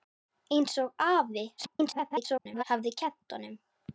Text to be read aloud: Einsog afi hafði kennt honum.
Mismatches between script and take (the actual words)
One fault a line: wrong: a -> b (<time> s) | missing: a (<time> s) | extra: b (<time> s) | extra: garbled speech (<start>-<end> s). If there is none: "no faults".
extra: garbled speech (1.6-2.6 s)